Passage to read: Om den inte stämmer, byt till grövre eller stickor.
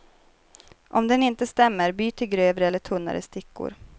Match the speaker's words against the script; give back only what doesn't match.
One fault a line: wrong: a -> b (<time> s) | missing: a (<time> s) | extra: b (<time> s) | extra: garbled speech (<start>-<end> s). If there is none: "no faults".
extra: tunnare (2.8 s)